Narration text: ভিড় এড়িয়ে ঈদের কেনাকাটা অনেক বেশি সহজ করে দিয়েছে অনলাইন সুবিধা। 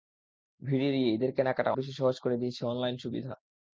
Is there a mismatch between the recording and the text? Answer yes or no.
yes